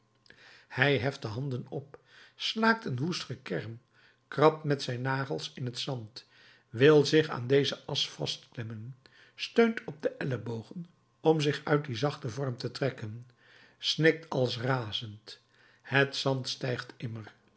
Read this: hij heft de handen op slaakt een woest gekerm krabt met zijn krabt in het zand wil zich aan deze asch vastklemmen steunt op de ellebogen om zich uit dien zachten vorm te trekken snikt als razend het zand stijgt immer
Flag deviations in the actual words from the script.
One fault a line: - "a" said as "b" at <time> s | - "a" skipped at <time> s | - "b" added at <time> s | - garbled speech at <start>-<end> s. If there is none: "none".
- "krabt" said as "nagels" at 5.0 s